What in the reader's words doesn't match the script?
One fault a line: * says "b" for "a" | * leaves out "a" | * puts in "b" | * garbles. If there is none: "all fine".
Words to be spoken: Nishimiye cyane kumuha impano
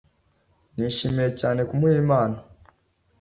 all fine